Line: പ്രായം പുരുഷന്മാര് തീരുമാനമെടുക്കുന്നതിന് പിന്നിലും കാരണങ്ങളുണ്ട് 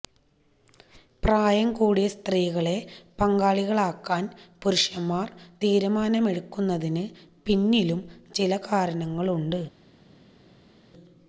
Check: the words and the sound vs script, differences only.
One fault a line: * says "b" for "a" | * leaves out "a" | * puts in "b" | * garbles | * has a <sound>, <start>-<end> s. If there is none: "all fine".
* puts in "കൂടിയ സ്ത്രീകളെ പങ്കാളികളാക്കാന്"
* puts in "ചില"